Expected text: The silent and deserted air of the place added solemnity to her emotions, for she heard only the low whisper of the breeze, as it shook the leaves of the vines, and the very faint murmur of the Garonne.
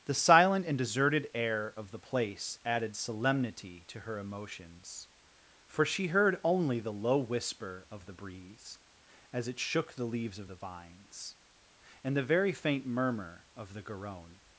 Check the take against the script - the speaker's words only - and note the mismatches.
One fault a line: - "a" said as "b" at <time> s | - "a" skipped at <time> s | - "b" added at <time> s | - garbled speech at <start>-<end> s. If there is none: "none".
none